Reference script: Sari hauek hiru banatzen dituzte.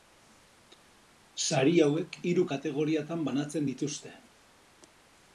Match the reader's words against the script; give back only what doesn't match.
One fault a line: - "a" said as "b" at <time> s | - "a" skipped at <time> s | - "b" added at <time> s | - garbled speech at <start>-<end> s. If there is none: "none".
- "kategoriatan" added at 2.5 s